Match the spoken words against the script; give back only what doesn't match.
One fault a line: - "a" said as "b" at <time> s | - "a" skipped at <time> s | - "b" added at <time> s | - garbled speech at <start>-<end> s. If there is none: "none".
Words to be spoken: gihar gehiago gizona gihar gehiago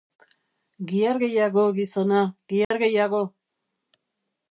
none